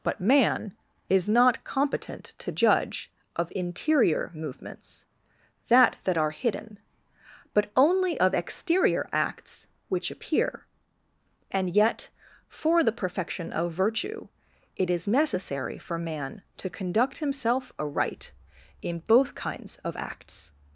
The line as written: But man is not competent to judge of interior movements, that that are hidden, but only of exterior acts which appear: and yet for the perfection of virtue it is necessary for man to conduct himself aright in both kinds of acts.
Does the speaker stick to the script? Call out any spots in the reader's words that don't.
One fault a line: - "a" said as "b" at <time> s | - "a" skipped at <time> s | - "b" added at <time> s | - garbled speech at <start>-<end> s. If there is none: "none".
none